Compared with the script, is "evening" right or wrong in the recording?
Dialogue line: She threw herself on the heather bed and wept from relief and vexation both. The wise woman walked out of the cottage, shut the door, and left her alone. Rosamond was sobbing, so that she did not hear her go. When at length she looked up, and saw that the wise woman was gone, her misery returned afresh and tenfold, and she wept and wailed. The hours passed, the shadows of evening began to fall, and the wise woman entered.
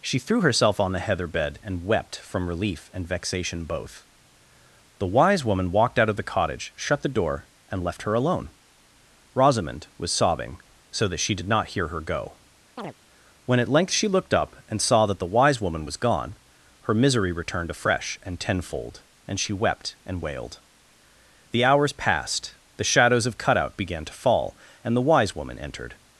wrong